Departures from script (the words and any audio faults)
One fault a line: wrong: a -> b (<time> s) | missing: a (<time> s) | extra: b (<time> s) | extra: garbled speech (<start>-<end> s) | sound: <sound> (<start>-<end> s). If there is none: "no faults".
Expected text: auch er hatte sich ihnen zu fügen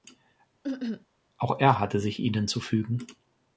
sound: cough (0.6-1.1 s)